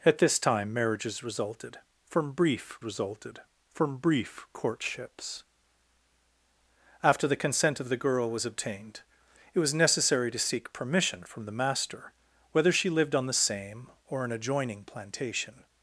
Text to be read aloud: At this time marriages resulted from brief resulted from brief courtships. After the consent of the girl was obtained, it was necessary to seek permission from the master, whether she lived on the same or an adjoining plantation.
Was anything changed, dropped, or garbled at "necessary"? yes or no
no